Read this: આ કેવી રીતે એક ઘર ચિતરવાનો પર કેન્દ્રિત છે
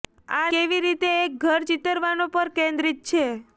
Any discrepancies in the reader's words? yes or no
no